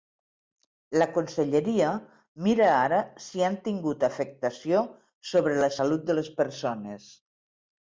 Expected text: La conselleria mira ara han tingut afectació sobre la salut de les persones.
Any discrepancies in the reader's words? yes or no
yes